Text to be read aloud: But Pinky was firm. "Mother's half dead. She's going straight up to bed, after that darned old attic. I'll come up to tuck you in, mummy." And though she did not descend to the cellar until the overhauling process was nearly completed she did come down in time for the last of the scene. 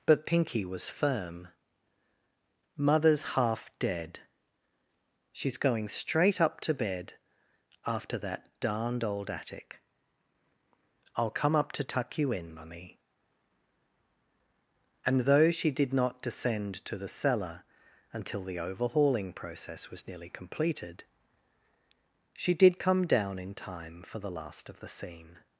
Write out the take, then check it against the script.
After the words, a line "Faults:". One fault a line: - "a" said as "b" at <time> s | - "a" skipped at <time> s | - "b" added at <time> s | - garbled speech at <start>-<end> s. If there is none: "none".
But Pinky was firm. "Mother's half dead. She's going straight up to bed, after that darned old attic. I'll come up to tuck you in, mummy." And though she did not descend to the cellar until the overhauling process was nearly completed she did come down in time for the last of the scene.
Faults:
none